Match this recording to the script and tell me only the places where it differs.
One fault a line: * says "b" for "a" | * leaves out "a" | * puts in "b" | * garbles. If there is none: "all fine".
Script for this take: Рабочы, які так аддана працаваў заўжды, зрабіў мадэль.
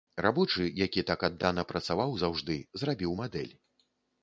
all fine